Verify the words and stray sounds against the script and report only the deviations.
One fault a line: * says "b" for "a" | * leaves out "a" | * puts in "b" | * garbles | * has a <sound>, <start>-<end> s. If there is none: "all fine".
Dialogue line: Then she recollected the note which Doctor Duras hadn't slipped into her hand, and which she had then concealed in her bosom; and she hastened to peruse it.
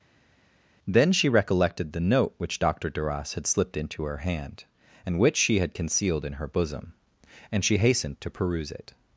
* says "had" for "hadn't"
* leaves out "then"